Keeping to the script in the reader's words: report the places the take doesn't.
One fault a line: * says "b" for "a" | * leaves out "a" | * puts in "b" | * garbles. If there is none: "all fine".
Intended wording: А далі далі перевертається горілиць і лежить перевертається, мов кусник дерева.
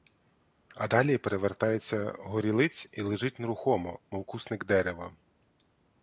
* leaves out "далі"
* says "нерухомо" for "перевертається"